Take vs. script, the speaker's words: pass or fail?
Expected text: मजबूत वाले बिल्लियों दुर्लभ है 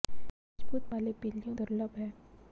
pass